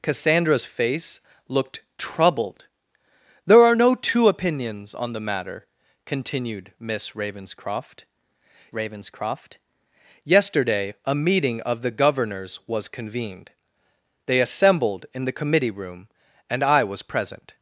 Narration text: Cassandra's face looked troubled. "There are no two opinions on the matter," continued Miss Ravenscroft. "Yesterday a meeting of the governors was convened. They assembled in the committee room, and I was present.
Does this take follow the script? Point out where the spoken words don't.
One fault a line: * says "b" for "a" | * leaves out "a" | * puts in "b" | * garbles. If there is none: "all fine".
* puts in "Ravenscroft"